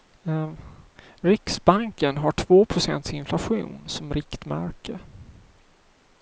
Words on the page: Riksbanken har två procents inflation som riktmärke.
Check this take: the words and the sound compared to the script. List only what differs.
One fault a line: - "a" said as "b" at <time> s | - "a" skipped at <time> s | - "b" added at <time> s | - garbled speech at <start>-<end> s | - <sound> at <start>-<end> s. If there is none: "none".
none